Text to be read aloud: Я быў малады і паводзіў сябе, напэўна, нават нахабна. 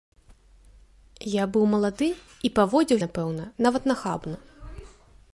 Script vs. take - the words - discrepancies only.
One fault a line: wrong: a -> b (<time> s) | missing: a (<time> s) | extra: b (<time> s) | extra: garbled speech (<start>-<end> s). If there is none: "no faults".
missing: сябе (3.0 s)